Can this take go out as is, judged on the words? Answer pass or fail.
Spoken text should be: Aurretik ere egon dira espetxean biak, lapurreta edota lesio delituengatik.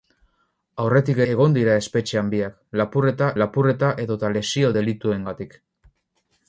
fail